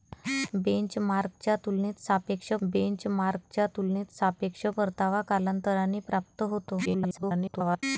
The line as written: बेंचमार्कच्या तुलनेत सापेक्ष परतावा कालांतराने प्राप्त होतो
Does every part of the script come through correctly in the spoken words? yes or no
no